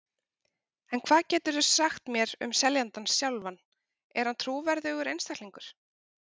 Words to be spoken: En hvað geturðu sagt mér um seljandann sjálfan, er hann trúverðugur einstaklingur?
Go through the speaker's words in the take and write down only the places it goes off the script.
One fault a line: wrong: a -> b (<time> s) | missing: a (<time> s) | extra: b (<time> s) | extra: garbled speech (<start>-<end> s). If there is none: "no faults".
no faults